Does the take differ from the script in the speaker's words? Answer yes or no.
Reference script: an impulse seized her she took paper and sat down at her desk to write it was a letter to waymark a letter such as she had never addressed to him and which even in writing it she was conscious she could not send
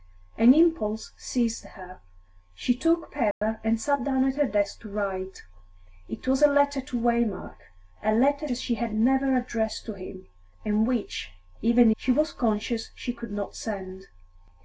yes